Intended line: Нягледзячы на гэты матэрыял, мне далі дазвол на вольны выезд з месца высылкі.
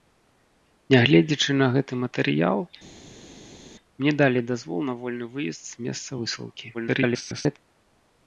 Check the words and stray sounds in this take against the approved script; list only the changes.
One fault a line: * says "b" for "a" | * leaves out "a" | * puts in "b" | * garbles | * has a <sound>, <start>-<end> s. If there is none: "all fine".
* garbles